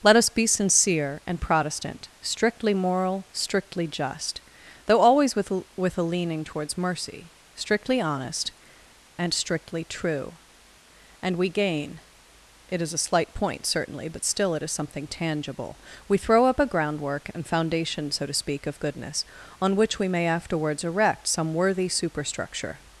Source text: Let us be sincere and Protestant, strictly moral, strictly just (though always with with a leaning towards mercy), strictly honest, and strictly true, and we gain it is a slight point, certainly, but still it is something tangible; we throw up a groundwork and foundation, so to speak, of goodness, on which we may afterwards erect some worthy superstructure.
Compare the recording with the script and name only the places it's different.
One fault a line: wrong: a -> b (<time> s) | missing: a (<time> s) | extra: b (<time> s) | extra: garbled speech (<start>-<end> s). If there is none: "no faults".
no faults